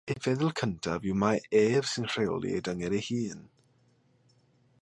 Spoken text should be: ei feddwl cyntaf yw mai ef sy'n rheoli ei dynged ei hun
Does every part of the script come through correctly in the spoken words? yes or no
yes